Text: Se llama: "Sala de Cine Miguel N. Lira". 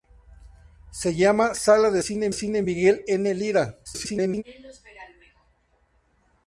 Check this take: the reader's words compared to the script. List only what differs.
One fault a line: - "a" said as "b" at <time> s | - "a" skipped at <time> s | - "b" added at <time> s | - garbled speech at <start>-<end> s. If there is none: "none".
- "Cine" added at 2.3 s
- garbled speech at 3.9-4.4 s